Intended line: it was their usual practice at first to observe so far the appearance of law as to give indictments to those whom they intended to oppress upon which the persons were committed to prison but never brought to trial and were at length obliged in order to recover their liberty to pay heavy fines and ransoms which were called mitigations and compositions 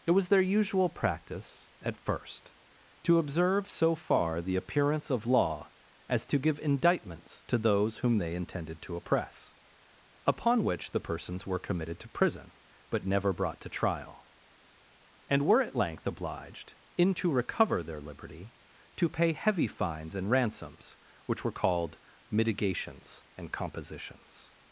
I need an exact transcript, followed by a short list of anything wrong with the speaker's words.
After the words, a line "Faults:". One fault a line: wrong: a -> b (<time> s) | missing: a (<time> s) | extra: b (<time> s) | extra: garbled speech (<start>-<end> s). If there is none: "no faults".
it was their usual practice at first to observe so far the appearance of law as to give indictments to those whom they intended to oppress upon which the persons were committed to prison but never brought to trial and were at length obliged in to recover their liberty to pay heavy fines and ransoms which were called mitigations and compositions
Faults:
missing: order (17.2 s)